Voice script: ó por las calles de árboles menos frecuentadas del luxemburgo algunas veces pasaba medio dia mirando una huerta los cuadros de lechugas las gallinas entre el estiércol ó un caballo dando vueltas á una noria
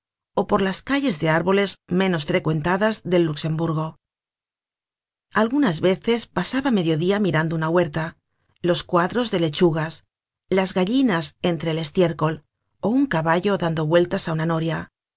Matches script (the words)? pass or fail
pass